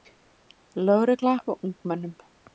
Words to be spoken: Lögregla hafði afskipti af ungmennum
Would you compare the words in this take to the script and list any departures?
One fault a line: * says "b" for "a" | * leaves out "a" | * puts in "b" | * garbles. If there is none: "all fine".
* leaves out "hafði afskipti"